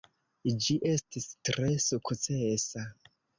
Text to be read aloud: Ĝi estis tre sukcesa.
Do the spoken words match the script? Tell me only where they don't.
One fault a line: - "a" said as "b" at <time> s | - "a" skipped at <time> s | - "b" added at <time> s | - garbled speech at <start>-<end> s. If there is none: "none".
none